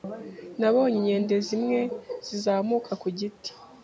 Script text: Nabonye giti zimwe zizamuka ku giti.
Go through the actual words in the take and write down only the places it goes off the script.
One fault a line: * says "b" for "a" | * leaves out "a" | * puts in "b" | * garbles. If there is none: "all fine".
* says "inkende" for "giti"